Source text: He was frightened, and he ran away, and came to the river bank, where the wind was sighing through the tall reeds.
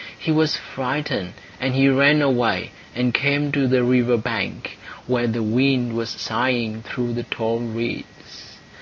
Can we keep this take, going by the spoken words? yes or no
yes